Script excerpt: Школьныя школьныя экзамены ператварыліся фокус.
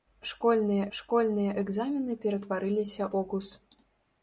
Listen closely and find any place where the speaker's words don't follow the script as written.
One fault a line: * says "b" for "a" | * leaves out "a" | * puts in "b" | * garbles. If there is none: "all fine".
all fine